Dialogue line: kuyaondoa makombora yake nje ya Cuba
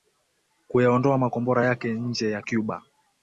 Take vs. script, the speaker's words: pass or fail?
pass